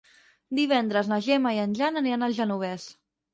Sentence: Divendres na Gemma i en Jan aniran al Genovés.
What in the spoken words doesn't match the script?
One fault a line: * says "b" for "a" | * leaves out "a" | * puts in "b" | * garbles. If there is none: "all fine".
all fine